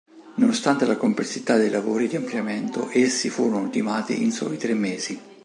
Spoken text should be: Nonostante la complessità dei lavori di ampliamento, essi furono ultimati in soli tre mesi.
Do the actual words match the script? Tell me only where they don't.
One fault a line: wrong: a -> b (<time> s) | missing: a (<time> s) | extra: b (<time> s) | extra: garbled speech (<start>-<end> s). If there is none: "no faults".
no faults